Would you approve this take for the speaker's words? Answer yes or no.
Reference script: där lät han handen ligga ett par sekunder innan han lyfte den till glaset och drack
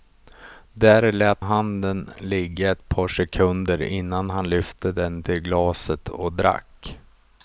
no